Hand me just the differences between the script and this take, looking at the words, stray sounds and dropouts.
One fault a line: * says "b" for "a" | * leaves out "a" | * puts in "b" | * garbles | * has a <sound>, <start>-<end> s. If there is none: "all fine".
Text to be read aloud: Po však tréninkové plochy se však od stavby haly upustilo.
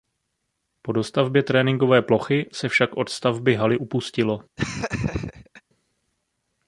* says "dostavbě" for "však"
* has a laugh, 4.6-5.6 s